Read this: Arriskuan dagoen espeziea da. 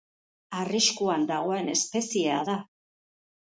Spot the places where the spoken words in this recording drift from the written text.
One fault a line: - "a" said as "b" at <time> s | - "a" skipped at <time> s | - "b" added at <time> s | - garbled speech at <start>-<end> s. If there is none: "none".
none